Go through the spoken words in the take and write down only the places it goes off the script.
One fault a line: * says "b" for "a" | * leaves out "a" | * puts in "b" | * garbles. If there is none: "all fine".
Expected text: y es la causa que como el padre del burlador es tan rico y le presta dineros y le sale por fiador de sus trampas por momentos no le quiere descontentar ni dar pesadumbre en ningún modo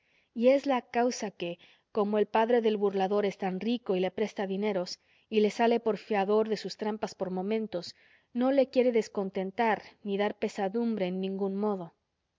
all fine